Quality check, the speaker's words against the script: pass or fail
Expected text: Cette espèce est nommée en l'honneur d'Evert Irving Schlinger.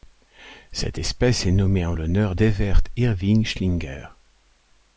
pass